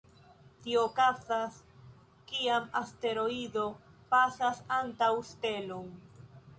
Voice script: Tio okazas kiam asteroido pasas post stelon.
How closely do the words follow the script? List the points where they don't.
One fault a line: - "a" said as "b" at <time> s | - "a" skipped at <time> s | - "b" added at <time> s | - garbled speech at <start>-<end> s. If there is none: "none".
- "post" said as "antaŭ" at 4.8 s